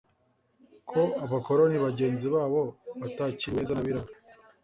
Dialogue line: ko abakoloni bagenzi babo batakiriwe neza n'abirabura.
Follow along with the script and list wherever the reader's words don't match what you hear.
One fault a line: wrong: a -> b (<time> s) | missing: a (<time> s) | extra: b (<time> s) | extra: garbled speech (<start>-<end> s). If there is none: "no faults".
no faults